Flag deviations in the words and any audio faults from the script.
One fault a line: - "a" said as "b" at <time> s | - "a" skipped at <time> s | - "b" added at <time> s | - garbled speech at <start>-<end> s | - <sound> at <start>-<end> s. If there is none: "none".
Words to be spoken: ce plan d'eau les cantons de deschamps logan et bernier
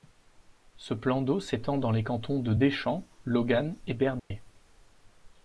- "s'étend dans" added at 1.4 s
- dropout at 4.2-4.3 s